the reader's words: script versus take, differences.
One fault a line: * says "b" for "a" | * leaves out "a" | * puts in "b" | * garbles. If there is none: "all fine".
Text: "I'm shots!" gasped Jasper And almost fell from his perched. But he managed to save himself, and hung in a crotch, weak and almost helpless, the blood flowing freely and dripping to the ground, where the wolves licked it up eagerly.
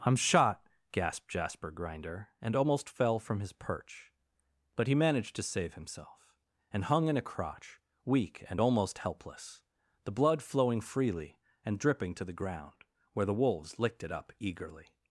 * says "shot" for "shots"
* puts in "Grinder"
* says "perch" for "perched"